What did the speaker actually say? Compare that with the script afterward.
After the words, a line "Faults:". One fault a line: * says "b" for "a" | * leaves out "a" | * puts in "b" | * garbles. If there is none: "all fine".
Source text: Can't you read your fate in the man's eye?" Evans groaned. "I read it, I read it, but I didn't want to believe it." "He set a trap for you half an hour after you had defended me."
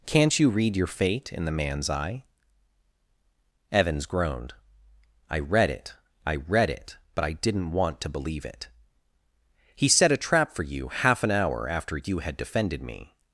Can't you read your fate in the man's eye?" Evans groaned. "I read it, I read it, but I didn't want to believe it." "He set a trap for you half an hour after you had defended me."
Faults:
all fine